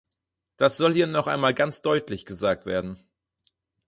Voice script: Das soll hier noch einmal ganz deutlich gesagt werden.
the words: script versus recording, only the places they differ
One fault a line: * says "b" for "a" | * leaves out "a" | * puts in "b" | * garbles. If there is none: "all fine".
all fine